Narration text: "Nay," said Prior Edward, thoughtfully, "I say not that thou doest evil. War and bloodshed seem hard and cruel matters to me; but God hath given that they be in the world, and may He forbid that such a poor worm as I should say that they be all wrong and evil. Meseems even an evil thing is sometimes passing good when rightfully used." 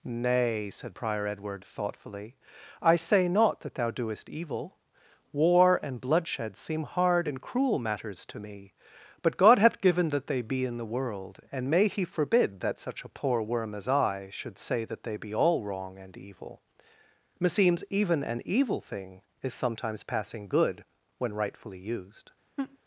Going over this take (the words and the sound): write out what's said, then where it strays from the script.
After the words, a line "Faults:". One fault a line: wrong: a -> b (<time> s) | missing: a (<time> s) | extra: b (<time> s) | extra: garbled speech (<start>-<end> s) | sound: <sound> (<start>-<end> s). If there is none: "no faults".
"Nay," said Prior Edward, thoughtfully, "I say not that thou doest evil. War and bloodshed seem hard and cruel matters to me; but God hath given that they be in the world, and may He forbid that such a poor worm as I should say that they be all wrong and evil. Meseems even an evil thing is sometimes passing good when rightfully used."
Faults:
sound: laugh (22.6-22.8 s)